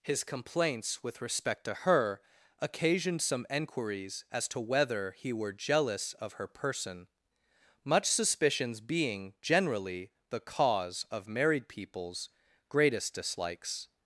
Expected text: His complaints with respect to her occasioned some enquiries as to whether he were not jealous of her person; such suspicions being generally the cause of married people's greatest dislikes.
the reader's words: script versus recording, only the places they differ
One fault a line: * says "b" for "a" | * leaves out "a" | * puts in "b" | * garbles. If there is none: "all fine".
* leaves out "not"
* says "much" for "such"